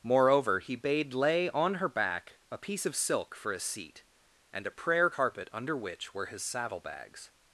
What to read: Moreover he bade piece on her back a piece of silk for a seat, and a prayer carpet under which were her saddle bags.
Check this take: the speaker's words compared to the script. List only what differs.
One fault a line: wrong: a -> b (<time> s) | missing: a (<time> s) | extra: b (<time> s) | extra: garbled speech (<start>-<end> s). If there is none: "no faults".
wrong: piece -> lay (1.1 s)
wrong: her -> his (6.3 s)